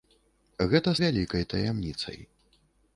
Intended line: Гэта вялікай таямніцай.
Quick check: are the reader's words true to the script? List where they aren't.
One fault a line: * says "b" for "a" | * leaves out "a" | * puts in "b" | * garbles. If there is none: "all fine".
all fine